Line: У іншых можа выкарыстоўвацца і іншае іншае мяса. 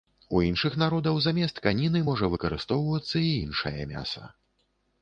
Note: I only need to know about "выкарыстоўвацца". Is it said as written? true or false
true